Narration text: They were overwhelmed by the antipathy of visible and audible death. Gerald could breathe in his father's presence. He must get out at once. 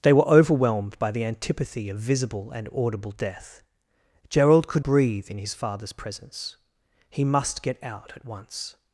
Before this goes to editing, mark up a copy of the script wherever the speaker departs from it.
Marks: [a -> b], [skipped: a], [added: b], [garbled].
They were overwhelmed by the antipathy of visible and audible death. Gerald could breathe in his father's presence. He must get out at once.